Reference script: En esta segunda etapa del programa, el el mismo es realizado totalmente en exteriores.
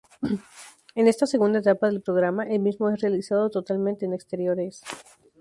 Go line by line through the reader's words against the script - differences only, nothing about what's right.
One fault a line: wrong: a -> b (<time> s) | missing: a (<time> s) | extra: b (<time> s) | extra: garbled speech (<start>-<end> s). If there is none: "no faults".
missing: el (2.6 s)